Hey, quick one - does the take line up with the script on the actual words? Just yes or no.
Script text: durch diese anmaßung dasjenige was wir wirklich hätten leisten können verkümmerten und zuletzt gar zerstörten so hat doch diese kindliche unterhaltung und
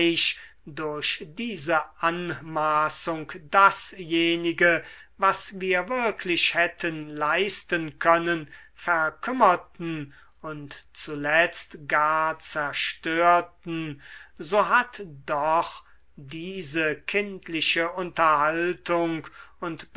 yes